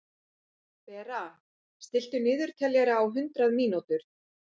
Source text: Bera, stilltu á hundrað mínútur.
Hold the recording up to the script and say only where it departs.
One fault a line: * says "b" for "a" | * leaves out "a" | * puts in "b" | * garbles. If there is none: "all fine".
* puts in "niðurteljara"